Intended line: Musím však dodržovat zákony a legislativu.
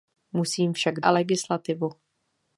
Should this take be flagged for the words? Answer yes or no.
yes